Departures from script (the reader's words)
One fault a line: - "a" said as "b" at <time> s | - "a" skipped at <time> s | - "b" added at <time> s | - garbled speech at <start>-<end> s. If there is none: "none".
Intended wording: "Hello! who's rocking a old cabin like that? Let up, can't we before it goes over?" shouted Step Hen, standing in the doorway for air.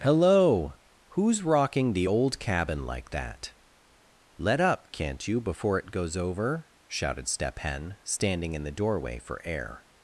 - "a" said as "the" at 1.9 s
- "we" said as "you" at 5.3 s